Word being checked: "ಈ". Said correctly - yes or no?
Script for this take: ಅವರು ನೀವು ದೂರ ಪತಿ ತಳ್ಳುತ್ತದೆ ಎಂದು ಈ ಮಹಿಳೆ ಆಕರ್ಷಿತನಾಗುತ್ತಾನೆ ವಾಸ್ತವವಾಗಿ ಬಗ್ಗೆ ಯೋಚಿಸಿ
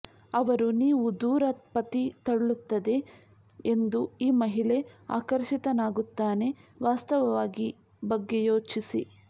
yes